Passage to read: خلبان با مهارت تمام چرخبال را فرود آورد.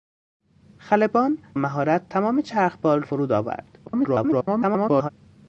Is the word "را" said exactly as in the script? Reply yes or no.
no